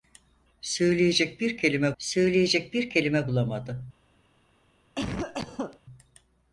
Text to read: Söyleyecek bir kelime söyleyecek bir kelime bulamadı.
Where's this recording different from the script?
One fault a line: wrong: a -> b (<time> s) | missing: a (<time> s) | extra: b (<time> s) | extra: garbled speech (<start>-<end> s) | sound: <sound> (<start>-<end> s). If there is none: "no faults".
sound: cough (5.0-5.8 s)